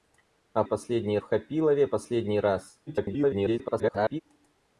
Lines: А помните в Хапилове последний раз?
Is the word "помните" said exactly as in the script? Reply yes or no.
no